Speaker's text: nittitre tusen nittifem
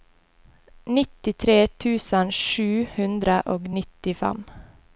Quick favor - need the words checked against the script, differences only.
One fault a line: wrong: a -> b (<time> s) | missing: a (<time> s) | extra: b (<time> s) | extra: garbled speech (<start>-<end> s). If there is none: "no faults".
extra: sju hundre og (2.4 s)